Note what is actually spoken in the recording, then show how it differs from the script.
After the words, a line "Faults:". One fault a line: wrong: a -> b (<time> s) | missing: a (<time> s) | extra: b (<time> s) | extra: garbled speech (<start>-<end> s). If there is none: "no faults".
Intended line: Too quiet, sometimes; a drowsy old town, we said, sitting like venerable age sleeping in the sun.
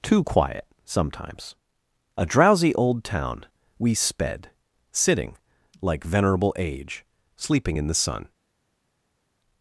Too quiet, sometimes; a drowsy old town, we sped, sitting like venerable age sleeping in the sun.
Faults:
wrong: said -> sped (3.9 s)